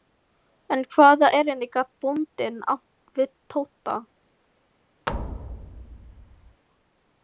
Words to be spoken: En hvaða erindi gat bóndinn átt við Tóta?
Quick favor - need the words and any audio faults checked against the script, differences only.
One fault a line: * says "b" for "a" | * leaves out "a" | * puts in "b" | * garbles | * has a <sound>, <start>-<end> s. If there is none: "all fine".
* has a thud, 5.1-6.6 s